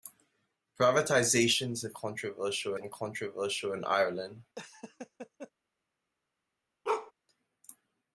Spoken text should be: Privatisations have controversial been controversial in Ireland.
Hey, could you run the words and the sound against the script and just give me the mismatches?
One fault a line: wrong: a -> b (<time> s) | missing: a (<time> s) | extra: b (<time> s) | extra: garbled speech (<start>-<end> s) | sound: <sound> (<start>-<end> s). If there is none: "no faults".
sound: laugh (4.6-5.5 s)
sound: bark (6.8-7.1 s)